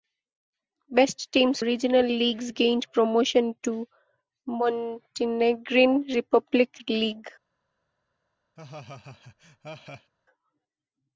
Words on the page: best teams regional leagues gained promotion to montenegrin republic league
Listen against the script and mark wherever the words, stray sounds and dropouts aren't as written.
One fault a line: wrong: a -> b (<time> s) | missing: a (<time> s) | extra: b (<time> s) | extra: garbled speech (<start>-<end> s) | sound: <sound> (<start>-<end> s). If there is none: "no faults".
sound: laugh (8.6-10.1 s)